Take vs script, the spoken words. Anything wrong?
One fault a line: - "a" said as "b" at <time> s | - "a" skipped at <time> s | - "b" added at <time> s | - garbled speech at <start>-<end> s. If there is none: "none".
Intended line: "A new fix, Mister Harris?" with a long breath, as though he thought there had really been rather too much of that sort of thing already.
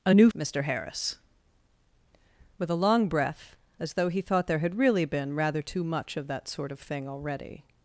- "fix" skipped at 0.3 s